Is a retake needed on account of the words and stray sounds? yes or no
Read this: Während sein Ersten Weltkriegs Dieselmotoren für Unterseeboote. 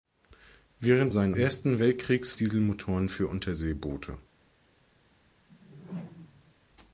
yes